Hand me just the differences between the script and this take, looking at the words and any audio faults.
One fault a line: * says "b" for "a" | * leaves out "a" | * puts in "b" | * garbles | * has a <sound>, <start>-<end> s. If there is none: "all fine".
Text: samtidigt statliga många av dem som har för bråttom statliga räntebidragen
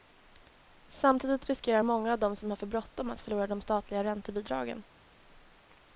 * says "riskerar" for "statliga"
* puts in "att förlora de"